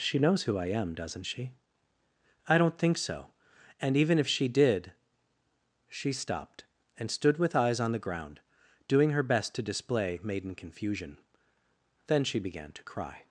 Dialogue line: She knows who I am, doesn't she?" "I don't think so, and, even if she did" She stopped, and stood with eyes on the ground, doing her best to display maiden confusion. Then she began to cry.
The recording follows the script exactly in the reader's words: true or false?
true